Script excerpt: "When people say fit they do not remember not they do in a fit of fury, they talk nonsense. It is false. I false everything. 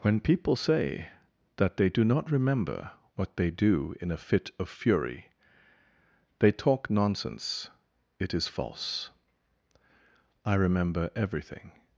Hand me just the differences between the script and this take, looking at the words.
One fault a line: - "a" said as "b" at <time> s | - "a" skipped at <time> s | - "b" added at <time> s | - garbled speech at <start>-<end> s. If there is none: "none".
- "fit" said as "that" at 1.6 s
- "not" said as "what" at 3.1 s
- "false" said as "remember" at 10.5 s